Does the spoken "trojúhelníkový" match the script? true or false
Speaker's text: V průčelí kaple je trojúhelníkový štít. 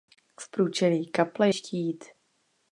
false